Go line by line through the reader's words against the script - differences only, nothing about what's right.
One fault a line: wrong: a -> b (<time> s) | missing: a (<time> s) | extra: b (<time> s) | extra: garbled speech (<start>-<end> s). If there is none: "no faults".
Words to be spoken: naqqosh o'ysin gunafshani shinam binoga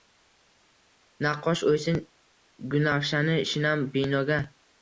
no faults